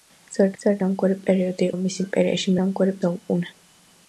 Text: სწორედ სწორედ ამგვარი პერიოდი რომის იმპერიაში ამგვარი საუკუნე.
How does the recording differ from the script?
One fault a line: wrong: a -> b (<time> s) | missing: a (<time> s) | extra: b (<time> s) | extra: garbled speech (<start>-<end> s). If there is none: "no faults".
no faults